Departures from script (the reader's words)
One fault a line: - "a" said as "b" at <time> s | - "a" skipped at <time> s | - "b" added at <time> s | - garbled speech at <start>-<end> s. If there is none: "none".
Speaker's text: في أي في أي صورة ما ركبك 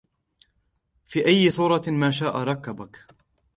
- "في أي" skipped at 1.5 s
- "شاء" added at 2.1 s